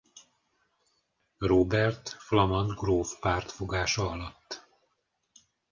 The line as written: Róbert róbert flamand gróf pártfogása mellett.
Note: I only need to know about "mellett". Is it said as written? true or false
false